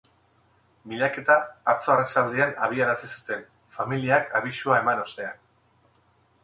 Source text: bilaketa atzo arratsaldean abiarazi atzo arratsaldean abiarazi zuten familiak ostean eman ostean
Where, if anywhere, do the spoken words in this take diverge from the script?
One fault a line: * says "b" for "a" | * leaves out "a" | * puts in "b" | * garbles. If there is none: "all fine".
* leaves out "atzo arratsaldean abiarazi"
* says "abisua" for "ostean"